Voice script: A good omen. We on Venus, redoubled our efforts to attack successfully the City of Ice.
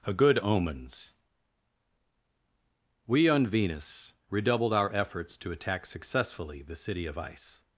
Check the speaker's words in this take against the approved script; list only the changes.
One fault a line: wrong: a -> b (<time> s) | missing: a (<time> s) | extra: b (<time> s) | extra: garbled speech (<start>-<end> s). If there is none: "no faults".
wrong: omen -> omens (0.4 s)